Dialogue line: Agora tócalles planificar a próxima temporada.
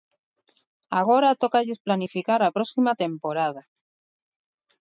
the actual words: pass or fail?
pass